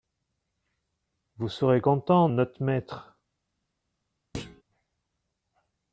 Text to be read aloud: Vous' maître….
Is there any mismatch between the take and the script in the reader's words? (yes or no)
yes